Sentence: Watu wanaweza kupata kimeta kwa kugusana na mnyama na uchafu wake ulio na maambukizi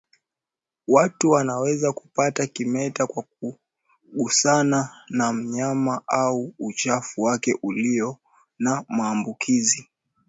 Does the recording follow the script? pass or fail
fail